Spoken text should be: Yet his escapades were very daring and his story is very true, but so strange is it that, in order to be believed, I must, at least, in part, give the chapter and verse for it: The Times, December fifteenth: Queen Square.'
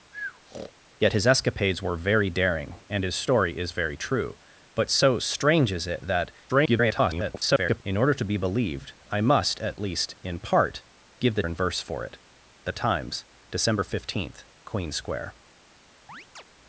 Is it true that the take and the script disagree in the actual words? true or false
true